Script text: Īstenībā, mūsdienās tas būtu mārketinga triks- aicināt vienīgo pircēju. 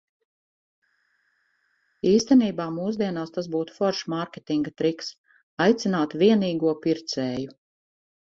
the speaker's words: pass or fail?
fail